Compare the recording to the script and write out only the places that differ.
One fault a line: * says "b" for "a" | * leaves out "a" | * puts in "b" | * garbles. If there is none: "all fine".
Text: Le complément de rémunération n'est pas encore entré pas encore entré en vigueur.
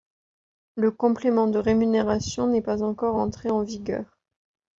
* leaves out "pas encore entré"